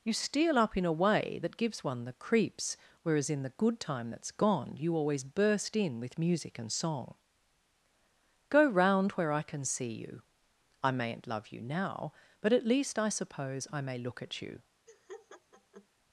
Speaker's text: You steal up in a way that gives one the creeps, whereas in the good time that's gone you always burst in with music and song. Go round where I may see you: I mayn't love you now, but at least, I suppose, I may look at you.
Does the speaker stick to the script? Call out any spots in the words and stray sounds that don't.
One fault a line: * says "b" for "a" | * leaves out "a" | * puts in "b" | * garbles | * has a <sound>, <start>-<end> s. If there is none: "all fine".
* says "can" for "may"
* has a laugh, 14.9-15.9 s